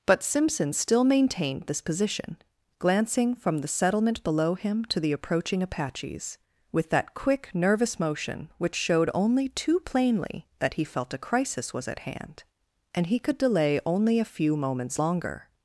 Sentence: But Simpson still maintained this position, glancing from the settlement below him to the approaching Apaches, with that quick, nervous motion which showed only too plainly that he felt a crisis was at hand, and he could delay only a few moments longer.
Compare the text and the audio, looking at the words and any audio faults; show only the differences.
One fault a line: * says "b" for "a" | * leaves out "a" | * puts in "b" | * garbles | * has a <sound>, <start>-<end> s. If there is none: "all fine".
all fine